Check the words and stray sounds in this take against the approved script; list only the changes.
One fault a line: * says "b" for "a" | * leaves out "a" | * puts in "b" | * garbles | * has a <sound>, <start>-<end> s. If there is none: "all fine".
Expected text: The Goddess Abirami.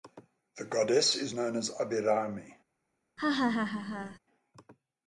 * puts in "is known as"
* has a laugh, 3.2-4.2 s